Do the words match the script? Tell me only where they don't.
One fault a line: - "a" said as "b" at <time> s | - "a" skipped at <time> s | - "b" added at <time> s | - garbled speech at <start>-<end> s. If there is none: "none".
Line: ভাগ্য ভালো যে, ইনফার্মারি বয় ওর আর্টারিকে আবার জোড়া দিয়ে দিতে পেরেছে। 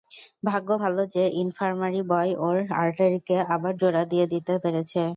none